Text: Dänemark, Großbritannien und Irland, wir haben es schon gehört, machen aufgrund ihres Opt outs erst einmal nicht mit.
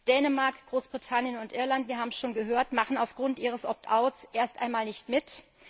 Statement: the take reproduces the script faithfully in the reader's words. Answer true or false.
true